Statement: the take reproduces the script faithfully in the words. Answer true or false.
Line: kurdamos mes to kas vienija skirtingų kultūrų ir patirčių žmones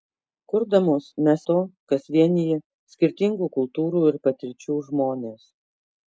true